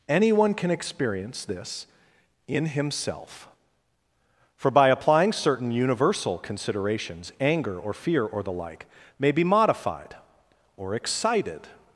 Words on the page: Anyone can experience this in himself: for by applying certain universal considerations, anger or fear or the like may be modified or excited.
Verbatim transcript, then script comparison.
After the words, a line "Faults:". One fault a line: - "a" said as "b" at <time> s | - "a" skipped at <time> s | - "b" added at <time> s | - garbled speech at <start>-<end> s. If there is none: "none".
Anyone can experience this in himself: for by applying certain universal considerations, anger or fear or the like may be modified or excited.
Faults:
none